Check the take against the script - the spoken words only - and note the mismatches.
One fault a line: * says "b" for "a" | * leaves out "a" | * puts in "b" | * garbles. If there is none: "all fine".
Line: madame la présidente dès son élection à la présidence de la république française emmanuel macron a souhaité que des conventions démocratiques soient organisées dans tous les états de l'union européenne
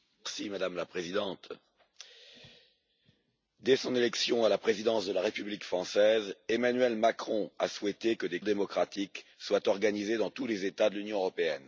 * leaves out "conventions"